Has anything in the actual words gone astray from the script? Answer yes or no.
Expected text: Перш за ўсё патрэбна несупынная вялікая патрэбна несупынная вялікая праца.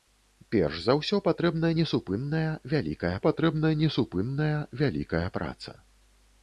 no